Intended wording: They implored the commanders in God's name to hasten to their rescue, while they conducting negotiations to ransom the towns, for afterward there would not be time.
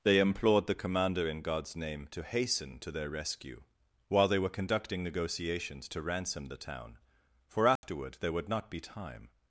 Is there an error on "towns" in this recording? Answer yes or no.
yes